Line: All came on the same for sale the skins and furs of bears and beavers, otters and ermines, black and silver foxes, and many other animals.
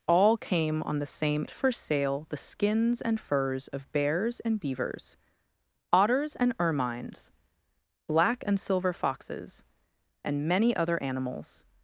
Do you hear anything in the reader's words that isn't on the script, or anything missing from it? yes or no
no